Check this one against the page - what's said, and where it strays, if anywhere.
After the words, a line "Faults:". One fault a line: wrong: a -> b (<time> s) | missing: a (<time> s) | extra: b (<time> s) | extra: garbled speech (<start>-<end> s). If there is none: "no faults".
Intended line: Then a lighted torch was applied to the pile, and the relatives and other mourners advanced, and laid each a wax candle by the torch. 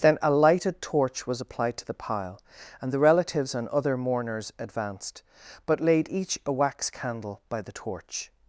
Then a lighted torch was applied to the pile, and the relatives and other mourners advanced, but laid each a wax candle by the torch.
Faults:
wrong: and -> but (5.7 s)